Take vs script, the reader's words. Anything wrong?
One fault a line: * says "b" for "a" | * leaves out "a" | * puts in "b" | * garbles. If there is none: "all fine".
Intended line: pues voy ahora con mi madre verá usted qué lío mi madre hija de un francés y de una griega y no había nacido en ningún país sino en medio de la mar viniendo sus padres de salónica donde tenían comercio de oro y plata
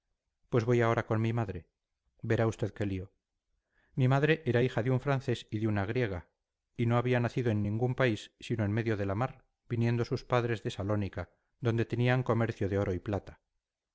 * puts in "era"